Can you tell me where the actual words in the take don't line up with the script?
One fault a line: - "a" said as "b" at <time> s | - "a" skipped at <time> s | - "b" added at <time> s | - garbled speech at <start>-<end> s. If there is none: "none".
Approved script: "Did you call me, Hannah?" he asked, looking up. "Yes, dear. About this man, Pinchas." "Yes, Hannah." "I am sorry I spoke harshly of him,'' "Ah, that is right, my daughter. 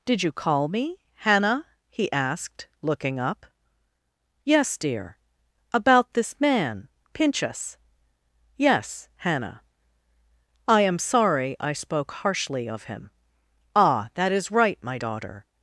none